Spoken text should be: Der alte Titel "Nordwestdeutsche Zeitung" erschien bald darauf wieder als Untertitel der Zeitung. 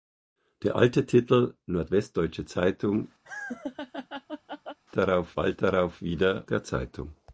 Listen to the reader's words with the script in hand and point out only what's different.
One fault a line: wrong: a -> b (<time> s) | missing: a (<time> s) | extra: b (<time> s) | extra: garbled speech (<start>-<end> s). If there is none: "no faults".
wrong: erschien -> darauf (5.0 s)
missing: als Untertitel (6.4 s)